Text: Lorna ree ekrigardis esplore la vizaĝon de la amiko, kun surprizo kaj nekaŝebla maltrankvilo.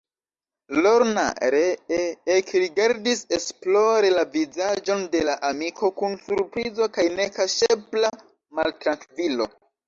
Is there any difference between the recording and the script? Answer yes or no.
no